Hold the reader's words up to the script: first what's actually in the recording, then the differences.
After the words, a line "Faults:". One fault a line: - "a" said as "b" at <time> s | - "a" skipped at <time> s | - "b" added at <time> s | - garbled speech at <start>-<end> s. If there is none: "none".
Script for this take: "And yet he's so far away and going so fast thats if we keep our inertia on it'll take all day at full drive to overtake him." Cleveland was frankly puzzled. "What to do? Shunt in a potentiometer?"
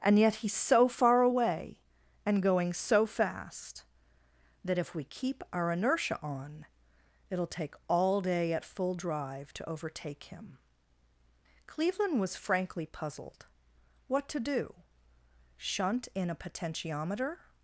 "And yet he's so far away and going so fast that if we keep our inertia on it'll take all day at full drive to overtake him." Cleveland was frankly puzzled. "What to do? Shunt in a potentiometer?"
Faults:
- "thats" said as "that" at 4.6 s